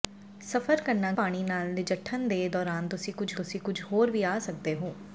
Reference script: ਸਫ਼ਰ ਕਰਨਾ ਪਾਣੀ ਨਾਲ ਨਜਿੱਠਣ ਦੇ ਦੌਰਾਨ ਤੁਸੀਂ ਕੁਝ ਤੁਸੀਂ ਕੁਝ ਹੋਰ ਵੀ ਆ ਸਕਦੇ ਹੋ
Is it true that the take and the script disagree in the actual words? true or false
false